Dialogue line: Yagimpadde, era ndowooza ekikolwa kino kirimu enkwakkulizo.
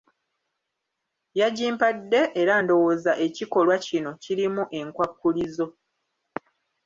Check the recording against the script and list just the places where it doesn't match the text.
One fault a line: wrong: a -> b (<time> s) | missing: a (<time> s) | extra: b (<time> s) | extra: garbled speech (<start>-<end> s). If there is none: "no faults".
no faults